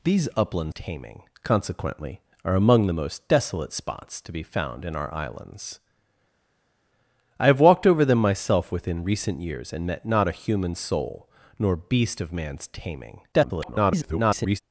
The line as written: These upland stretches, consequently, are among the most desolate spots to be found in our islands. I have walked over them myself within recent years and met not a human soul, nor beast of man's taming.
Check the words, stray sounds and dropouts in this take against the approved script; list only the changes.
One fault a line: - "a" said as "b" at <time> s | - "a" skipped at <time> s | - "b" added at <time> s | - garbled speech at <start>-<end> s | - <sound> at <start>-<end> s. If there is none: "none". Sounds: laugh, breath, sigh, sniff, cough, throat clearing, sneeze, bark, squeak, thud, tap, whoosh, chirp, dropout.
- "stretches" said as "taming" at 0.7 s
- garbled speech at 13.3-14.6 s